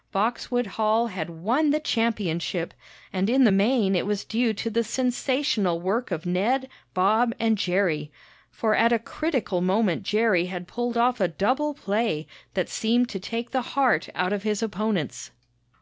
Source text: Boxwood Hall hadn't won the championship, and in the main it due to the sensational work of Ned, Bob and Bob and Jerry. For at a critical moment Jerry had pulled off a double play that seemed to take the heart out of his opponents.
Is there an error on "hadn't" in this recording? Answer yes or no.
yes